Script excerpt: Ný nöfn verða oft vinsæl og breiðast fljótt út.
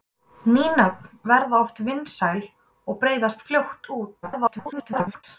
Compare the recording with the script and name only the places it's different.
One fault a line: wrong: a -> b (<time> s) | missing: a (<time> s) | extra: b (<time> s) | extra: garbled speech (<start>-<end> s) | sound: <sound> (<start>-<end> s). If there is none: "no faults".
extra: garbled speech (4.2-5.2 s)